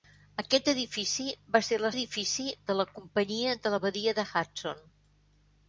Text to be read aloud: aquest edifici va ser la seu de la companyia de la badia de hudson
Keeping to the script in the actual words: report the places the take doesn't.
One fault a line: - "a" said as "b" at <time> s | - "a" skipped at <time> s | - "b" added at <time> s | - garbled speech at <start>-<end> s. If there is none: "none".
- "seu" said as "edifici" at 1.9 s